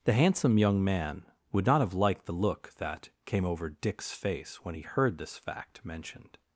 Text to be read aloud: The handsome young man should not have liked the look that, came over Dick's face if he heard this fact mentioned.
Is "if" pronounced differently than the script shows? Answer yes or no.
yes